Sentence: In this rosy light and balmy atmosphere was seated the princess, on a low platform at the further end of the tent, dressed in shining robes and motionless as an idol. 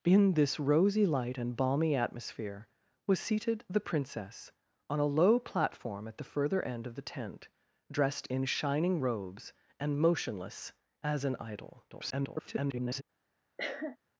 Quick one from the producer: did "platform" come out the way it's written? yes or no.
yes